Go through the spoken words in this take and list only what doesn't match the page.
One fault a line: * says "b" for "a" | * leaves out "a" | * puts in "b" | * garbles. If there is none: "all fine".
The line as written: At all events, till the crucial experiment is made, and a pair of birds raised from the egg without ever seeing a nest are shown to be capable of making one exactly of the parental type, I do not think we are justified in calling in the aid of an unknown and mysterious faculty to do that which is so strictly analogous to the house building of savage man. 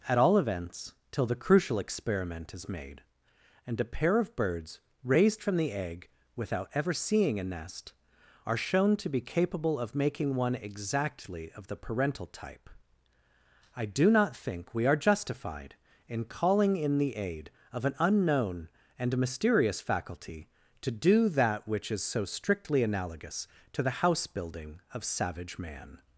all fine